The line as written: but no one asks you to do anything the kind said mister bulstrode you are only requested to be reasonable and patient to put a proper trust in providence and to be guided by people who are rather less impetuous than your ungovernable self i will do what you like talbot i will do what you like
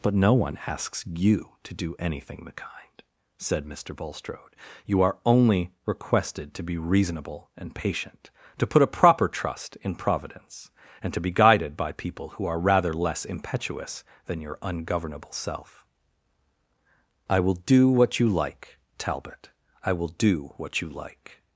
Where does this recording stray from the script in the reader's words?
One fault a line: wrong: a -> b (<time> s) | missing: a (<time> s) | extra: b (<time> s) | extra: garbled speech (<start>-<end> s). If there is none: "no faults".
no faults